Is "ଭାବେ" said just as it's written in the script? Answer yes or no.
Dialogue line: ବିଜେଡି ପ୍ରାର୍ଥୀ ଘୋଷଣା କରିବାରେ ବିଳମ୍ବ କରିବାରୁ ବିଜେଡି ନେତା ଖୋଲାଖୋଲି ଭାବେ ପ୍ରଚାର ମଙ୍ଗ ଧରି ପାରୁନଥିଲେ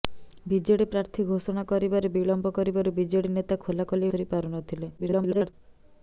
no